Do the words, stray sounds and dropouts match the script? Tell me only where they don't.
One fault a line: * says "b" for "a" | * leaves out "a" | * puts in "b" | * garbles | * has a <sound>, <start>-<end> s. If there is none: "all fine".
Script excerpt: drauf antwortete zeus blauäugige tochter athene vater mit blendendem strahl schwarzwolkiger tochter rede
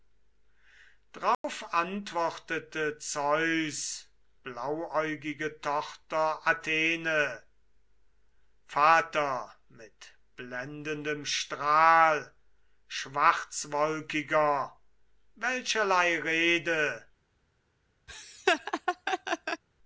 * has a dropout, 1.3-1.4 s
* says "welcherlei" for "tochter"
* has a laugh, 18.1-19.6 s